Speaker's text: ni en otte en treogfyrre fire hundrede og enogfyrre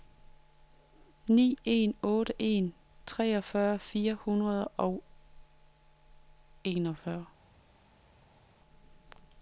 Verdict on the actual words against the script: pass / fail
pass